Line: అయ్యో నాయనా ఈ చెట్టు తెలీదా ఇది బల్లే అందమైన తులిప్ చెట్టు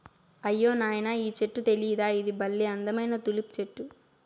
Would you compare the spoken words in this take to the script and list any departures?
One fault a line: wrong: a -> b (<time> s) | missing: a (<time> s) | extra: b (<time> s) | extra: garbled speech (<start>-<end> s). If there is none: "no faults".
no faults